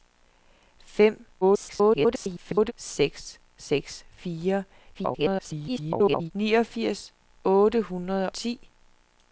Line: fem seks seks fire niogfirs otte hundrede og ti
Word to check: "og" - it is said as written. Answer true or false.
false